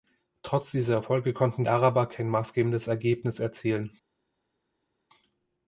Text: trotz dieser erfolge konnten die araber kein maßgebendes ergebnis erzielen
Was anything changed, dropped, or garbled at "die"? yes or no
yes